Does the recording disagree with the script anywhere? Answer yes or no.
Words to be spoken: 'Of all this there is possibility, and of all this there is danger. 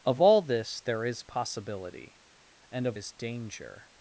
yes